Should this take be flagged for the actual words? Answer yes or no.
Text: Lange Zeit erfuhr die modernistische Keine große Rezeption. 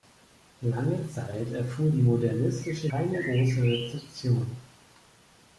no